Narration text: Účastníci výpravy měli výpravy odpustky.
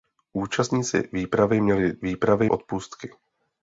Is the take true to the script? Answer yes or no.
yes